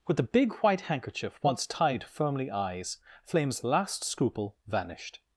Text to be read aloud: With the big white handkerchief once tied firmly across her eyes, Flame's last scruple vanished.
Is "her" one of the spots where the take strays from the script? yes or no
yes